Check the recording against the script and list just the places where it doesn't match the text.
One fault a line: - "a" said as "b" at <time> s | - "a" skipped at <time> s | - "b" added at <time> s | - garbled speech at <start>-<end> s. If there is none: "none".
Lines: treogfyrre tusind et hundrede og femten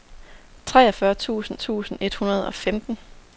- "tusind" added at 1.5 s